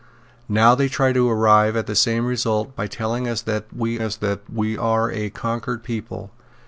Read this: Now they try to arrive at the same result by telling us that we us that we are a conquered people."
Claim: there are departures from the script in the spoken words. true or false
false